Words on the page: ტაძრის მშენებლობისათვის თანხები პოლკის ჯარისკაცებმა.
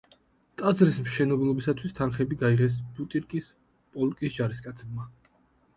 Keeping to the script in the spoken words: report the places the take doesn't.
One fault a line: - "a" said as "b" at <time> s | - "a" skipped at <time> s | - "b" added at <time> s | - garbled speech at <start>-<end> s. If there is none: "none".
- "გაიღეს ბუტირკის" added at 2.5 s